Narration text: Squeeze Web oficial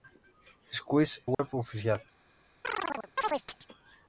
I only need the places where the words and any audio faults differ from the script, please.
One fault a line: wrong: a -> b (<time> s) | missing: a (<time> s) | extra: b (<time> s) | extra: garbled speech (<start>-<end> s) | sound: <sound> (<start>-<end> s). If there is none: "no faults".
sound: dropout (1.3-1.4 s)
sound: chirp (2.6-3.7 s)